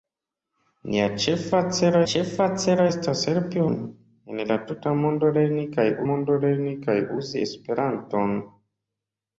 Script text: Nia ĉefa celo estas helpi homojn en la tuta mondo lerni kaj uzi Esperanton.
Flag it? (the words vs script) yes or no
yes